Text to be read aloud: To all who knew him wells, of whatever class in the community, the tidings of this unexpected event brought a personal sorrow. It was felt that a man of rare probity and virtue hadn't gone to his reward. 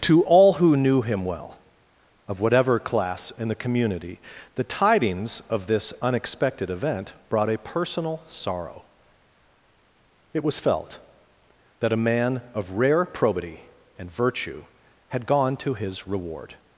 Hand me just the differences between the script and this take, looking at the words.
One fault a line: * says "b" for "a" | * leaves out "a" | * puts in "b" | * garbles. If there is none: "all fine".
* says "well" for "wells"
* says "had" for "hadn't"